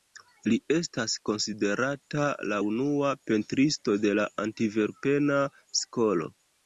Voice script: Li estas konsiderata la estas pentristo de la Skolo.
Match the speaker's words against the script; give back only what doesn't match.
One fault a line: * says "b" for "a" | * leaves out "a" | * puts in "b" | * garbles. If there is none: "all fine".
* says "unua" for "estas"
* puts in "Antverpena"